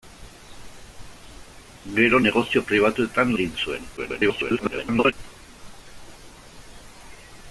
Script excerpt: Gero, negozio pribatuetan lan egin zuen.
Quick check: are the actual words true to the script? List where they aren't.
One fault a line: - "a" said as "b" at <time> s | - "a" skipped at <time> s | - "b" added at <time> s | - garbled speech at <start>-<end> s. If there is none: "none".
- "lan" skipped at 3.3 s
- garbled speech at 4.0-5.1 s